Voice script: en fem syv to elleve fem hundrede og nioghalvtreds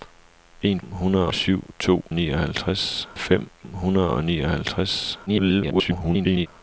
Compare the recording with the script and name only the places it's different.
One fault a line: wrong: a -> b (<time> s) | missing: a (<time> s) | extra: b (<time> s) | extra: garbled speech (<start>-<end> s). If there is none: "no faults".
wrong: fem -> hundrede (0.8 s)
wrong: elleve -> nioghalvtreds (2.1 s)
extra: garbled speech (5.3-6.5 s)